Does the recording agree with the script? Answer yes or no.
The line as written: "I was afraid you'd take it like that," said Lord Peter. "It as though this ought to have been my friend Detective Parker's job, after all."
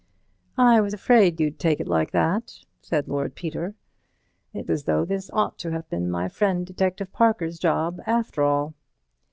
yes